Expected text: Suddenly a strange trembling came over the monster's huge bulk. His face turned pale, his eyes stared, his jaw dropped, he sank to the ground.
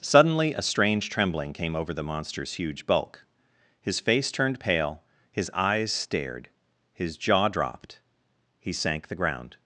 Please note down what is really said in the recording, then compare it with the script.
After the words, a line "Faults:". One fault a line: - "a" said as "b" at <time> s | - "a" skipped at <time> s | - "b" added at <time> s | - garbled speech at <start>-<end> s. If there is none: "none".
Suddenly a strange trembling came over the monster's huge bulk. His face turned pale, his eyes stared, his jaw dropped, he sank the ground.
Faults:
- "to" skipped at 9.1 s